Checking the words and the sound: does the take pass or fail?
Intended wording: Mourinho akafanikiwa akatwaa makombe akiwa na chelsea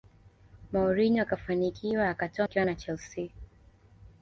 fail